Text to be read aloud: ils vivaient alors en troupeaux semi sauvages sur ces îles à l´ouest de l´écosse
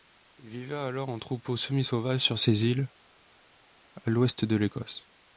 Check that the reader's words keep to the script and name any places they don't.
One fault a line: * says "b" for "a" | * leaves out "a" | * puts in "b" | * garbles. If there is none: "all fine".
all fine